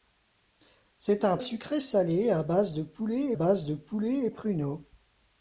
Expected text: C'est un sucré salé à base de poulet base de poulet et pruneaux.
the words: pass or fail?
pass